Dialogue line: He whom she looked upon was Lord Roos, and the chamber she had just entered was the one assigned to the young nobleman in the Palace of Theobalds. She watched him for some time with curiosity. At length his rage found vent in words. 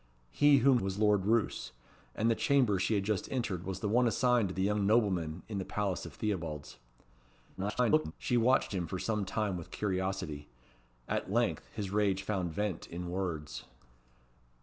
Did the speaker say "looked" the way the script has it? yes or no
no